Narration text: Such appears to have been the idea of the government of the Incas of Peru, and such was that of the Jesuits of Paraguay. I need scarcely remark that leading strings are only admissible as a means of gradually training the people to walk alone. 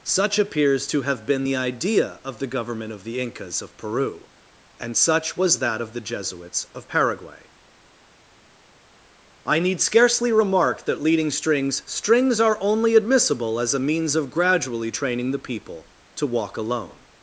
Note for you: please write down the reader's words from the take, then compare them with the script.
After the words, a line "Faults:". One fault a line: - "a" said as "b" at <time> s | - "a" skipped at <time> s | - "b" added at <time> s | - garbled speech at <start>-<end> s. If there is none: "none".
Such appears to have been the idea of the government of the Incas of Peru, and such was that of the Jesuits of Paraguay. I need scarcely remark that leading strings strings are only admissible as a means of gradually training the people to walk alone.
Faults:
- "strings" added at 11.9 s